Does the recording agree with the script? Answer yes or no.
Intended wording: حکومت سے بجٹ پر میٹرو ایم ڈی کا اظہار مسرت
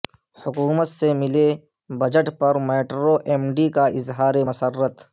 no